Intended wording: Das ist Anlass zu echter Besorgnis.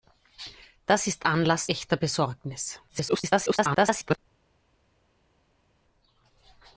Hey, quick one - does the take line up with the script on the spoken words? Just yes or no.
no